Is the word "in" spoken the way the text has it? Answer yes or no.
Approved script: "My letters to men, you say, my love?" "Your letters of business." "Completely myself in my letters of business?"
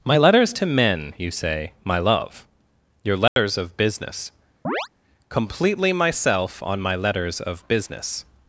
no